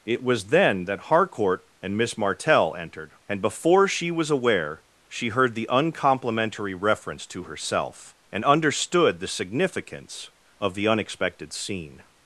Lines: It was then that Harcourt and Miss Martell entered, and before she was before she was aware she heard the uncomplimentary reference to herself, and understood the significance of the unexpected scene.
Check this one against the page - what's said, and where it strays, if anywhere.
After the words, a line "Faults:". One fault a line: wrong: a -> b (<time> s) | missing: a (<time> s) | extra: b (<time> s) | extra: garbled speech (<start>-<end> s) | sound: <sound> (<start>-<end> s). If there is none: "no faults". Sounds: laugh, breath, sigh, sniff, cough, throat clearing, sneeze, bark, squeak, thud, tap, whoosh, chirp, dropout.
It was then that Harcourt and Miss Martell entered, and before she was aware she heard the uncomplimentary reference to herself, and understood the significance of the unexpected scene.
Faults:
missing: before she was (4.3 s)